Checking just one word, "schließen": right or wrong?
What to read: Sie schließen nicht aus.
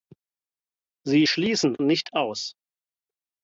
right